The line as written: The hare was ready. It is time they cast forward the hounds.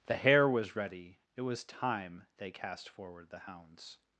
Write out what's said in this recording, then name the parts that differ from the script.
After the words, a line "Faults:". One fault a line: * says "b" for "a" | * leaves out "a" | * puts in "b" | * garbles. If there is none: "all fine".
The hare was ready. It was time they cast forward the hounds.
Faults:
* says "was" for "is"